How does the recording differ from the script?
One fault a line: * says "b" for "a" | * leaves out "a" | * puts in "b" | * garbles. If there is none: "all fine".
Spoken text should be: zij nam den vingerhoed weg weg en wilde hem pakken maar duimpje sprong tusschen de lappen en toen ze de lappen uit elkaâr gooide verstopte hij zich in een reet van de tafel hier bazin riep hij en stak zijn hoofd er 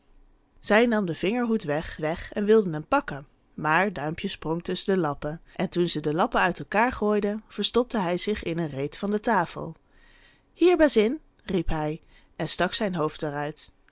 all fine